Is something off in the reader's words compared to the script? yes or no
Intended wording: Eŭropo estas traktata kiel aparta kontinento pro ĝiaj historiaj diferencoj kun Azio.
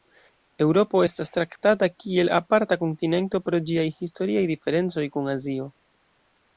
no